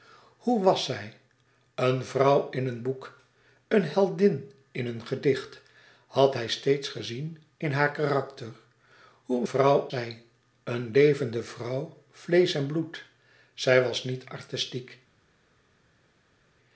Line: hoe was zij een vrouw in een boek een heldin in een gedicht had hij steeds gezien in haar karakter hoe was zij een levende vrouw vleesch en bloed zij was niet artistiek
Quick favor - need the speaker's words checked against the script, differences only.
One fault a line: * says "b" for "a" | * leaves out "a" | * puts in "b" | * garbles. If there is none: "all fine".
* says "vrouw" for "was"